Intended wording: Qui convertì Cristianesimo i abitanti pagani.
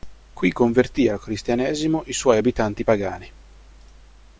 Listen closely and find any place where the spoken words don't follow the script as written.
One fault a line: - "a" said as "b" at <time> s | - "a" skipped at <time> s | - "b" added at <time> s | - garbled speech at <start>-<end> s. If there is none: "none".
- "al" added at 1.1 s
- "suoi" added at 2.1 s